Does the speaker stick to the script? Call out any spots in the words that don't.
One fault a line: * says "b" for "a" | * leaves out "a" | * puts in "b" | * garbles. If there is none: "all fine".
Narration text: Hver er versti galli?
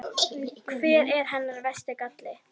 * puts in "hennar"